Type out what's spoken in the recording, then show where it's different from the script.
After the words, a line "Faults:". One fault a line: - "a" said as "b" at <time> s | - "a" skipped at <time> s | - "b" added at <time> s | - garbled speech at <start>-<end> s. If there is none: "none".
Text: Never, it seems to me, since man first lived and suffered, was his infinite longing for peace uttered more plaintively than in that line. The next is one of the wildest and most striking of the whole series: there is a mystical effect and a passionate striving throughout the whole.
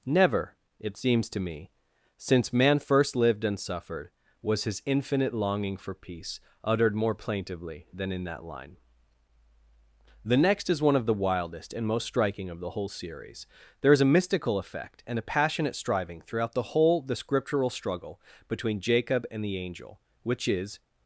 Never, it seems to me, since man first lived and suffered, was his infinite longing for peace uttered more plaintively than in that line. The next is one of the wildest and most striking of the whole series: there is a mystical effect and a passionate striving throughout the whole. The Scriptural struggle between Jacob and the angel, which is
Faults:
- "The Scriptural struggle between Jacob and the angel which is" added at 17.0 s